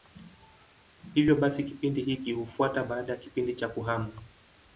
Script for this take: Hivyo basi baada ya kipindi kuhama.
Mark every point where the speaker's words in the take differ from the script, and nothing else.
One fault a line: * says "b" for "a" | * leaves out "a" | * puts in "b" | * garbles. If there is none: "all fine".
* puts in "kipindi hiki hufuata"
* puts in "cha"